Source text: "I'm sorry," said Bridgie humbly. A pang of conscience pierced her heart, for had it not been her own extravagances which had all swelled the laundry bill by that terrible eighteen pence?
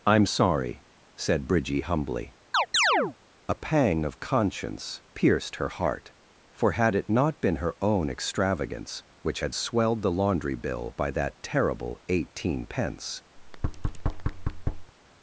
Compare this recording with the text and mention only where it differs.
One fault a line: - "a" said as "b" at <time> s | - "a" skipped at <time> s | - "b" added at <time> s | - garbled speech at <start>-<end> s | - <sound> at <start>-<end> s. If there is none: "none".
- chirp at 2.5-3.2 s
- "extravagances" said as "extravagance" at 8.1 s
- "all" skipped at 9.6 s
- thud at 13.4-14.9 s